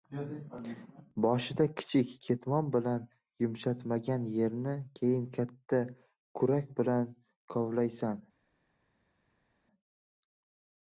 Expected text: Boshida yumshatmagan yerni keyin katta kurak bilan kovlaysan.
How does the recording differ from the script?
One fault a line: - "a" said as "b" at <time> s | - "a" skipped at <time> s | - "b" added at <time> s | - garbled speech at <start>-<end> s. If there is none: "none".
- "kichik ketmon bilan" added at 1.8 s